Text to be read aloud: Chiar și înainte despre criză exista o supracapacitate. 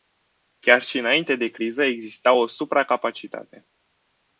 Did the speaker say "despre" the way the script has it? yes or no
no